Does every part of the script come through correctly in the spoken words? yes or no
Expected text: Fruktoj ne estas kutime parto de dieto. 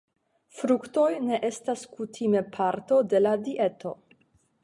no